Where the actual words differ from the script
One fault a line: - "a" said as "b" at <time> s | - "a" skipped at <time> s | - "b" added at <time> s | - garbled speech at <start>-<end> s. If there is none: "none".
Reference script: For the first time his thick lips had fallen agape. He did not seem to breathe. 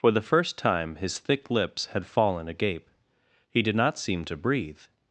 none